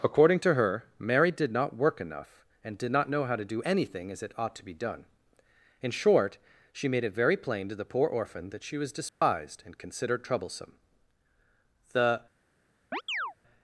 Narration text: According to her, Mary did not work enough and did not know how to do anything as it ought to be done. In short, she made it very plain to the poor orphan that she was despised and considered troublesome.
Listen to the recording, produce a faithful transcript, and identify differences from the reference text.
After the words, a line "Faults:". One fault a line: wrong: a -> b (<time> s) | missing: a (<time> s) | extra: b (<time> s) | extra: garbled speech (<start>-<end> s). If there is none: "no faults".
According to her, Mary did not work enough and did not know how to do anything as it ought to be done. In short, she made it very plain to the poor orphan that she was despised and considered troublesome. The
Faults:
extra: The (11.9 s)